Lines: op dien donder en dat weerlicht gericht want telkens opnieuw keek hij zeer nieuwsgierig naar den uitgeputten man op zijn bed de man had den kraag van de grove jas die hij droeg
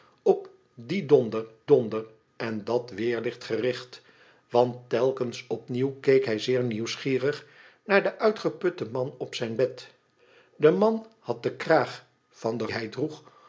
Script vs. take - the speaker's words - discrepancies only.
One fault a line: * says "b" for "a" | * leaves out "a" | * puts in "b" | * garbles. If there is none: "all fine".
* puts in "donder"
* leaves out "grove jas die"